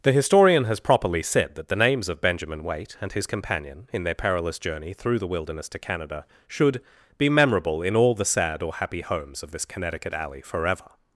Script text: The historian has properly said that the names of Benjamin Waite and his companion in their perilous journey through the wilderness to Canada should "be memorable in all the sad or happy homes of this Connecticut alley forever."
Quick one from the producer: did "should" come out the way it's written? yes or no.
yes